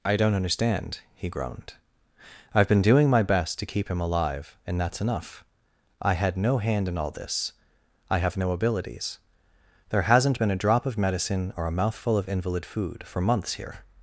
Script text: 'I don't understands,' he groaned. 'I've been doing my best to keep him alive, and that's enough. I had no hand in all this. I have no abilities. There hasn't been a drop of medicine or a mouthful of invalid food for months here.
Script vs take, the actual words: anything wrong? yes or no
yes